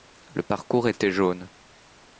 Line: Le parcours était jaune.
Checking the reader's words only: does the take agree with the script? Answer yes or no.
yes